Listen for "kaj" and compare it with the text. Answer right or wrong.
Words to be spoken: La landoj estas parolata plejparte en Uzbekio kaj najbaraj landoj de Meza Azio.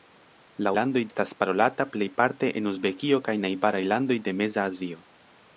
right